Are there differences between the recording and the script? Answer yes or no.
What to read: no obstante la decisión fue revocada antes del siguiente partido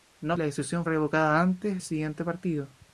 yes